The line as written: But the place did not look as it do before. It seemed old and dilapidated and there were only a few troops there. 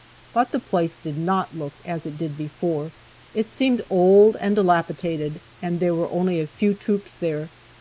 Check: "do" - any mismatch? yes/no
yes